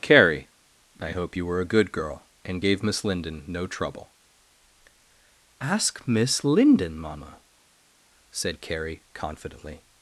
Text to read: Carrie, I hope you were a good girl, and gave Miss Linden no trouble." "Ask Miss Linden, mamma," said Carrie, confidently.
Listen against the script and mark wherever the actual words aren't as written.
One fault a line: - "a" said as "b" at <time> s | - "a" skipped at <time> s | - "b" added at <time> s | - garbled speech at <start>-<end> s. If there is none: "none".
none